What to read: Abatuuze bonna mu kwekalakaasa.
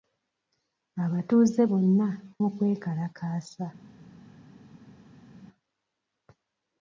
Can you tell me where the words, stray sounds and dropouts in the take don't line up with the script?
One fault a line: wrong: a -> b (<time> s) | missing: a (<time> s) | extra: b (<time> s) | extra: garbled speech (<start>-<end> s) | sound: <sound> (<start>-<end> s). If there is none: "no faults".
no faults